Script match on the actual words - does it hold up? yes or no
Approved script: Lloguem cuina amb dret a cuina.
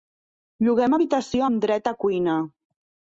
no